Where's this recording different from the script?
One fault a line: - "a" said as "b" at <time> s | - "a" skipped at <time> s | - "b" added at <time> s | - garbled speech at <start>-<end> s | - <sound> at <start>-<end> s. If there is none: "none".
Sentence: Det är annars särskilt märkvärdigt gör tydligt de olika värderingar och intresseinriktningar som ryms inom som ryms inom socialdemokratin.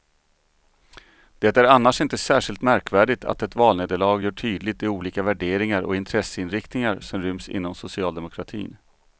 - "inte" added at 2.0 s
- "att ett valnederlag" added at 3.2 s
- "som ryms inom" skipped at 7.7 s